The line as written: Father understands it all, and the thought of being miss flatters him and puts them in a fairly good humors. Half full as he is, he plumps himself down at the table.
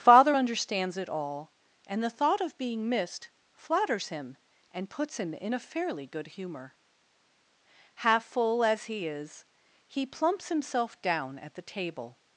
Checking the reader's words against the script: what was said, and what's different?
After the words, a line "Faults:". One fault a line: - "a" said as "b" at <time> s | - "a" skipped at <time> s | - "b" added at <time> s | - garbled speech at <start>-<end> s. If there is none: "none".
Father understands it all, and the thought of being missed flatters him and puts him in a fairly good humor. Half full as he is, he plumps himself down at the table.
Faults:
- "miss" said as "missed" at 2.9 s
- "them" said as "him" at 5.2 s
- "humors" said as "humor" at 6.3 s